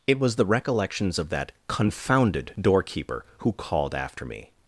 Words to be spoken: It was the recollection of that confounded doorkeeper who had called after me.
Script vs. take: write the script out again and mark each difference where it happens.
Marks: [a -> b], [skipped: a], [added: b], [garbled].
It was the [recollection -> recollections] of that confounded doorkeeper who [skipped: had] called after me.